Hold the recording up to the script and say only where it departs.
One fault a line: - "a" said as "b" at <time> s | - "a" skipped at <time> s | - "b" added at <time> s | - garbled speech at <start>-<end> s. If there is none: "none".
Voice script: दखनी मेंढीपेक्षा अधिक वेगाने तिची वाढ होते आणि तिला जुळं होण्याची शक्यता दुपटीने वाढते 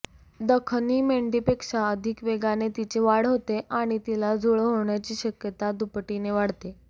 none